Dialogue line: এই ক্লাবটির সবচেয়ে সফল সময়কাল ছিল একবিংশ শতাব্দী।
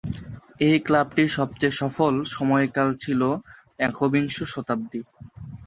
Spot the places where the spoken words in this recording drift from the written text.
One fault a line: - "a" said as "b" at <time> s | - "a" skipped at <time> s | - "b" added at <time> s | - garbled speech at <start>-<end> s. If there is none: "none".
none